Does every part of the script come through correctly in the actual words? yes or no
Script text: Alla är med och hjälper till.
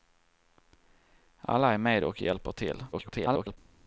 no